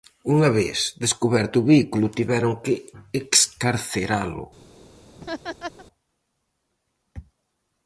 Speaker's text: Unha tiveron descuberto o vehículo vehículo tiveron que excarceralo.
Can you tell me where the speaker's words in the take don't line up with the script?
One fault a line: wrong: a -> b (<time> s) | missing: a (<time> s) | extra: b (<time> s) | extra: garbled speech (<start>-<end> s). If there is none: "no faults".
wrong: tiveron -> vez (0.6 s)
missing: vehículo (2.1 s)